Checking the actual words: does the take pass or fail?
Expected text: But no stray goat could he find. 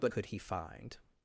fail